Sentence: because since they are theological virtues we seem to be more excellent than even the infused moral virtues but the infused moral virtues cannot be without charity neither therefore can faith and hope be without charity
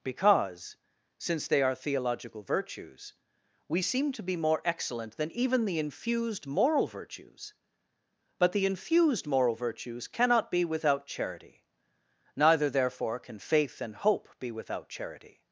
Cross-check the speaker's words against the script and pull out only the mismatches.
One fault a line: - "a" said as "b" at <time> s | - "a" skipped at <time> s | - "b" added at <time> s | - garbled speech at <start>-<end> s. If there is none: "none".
none